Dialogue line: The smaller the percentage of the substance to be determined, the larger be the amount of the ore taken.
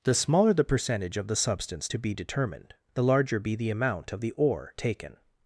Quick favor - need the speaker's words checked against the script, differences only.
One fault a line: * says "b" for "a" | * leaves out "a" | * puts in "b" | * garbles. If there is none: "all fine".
all fine